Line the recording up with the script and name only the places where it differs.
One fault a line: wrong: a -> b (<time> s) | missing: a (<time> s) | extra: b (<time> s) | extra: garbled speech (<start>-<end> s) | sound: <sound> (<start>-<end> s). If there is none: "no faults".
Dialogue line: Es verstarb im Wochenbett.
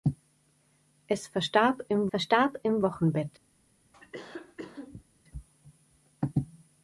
extra: verstarb im (2.1 s)
sound: cough (3.9-5.0 s)